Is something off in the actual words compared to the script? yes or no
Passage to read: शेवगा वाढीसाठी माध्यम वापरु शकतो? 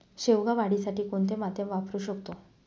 yes